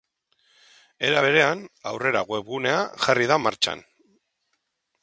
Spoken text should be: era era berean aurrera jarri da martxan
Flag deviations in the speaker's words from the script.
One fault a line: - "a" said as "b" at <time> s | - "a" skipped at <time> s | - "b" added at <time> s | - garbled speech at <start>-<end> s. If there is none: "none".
- "era" skipped at 1.2 s
- "webgunea" added at 2.3 s